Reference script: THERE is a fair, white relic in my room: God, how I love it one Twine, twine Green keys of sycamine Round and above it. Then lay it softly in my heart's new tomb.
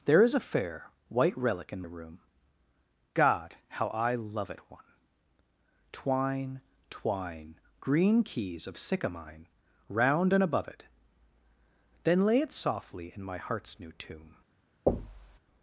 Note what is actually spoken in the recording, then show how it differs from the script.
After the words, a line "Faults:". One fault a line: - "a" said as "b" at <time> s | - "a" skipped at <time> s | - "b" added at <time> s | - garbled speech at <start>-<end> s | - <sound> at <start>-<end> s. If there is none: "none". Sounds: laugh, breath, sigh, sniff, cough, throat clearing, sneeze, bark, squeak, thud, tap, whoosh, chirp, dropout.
THERE is a fair, white relic in room: God, how I love it one Twine, twine Green keys of sycamine Round and above it. Then lay it softly in my heart's new tomb.
Faults:
- "my" skipped at 1.8 s
- thud at 14.9-15.4 s